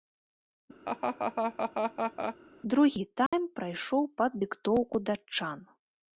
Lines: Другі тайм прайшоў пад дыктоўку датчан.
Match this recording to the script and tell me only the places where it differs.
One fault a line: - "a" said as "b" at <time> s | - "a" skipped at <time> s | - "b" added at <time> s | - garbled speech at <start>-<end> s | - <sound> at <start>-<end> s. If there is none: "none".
- laugh at 0.8-2.4 s
- dropout at 3.3-3.3 s